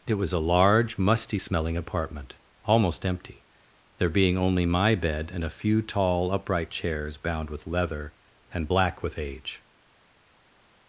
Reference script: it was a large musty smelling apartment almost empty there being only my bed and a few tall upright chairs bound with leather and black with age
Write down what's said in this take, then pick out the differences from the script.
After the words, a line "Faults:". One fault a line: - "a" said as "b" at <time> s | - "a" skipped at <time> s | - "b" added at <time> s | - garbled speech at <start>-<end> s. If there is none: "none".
it was a large musty smelling apartment almost empty there being only my bed and a few tall upright chairs bound with leather and black with age
Faults:
none